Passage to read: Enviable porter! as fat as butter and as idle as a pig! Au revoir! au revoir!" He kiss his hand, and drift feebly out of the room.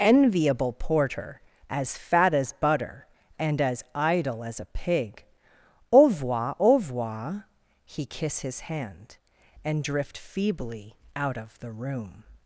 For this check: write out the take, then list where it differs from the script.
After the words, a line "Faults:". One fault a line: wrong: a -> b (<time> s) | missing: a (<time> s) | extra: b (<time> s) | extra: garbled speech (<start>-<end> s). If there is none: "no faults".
Enviable porter! as fat as butter and as idle as a pig! Au revoir! au revoir!" He kiss his hand, and drift feebly out of the room.
Faults:
no faults